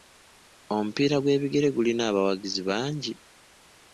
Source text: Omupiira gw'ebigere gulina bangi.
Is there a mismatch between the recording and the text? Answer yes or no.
yes